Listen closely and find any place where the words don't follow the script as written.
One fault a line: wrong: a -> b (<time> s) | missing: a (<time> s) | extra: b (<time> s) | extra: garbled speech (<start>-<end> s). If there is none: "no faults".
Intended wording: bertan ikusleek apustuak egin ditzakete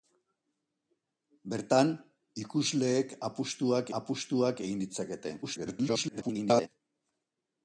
extra: apustuak (4.0 s)
extra: garbled speech (5.4-6.7 s)